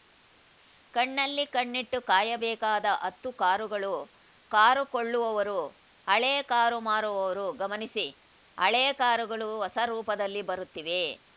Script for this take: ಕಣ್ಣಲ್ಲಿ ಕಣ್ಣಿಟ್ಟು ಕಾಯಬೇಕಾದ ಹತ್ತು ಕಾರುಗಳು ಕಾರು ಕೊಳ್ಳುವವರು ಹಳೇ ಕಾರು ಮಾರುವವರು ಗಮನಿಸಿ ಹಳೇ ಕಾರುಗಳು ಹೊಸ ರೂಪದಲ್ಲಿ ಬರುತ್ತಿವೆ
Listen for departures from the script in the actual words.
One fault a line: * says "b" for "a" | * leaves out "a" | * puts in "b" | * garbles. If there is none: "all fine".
all fine